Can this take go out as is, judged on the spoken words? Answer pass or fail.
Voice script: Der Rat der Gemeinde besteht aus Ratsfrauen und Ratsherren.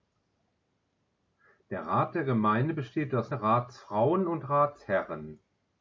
pass